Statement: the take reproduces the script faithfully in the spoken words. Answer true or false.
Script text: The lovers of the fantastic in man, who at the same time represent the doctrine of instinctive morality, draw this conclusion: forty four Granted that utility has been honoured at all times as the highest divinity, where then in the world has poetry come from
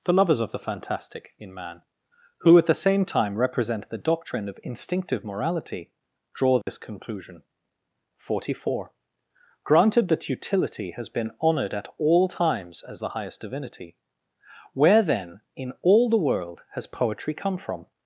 false